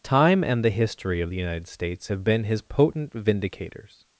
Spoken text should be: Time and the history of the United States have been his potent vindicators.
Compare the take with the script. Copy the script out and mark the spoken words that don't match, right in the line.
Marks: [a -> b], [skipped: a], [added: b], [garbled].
Time and the history of the United States have been his potent vindicators.